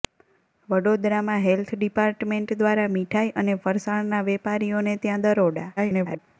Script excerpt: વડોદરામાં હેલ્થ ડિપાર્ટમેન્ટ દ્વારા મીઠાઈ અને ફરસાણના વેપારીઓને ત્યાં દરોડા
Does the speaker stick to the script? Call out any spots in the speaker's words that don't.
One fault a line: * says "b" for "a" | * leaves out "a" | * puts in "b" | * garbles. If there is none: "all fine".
* garbles